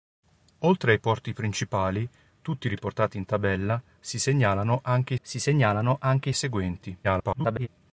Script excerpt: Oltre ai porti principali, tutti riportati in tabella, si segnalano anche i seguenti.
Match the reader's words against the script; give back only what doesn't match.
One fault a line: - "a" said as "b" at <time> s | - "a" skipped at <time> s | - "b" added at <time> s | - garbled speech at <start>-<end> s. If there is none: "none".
- "si segnalano anche" added at 5.2 s
- garbled speech at 7.0-7.7 s